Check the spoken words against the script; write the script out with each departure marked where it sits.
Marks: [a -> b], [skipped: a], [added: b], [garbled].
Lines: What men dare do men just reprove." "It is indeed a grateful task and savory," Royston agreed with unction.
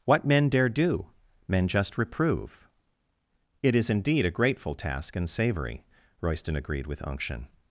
What men dare do men just reprove." "It is indeed a grateful task and savory," Royston agreed with unction.